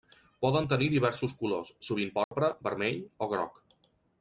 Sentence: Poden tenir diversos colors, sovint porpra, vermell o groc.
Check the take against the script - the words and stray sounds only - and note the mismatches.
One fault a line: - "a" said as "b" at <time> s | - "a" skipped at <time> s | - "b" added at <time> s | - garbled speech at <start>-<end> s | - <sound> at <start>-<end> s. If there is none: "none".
- dropout at 2.2-2.3 s